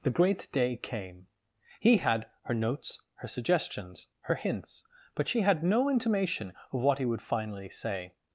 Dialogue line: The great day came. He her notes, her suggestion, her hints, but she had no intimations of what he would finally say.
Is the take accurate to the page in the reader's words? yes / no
no